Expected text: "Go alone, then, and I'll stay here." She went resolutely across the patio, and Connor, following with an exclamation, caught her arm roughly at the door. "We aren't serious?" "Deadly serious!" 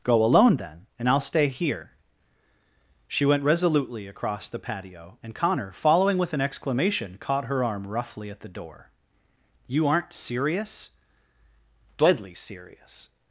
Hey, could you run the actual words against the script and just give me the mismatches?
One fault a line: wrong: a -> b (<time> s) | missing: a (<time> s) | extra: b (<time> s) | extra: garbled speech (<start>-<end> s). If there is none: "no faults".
wrong: We -> You (9.7 s)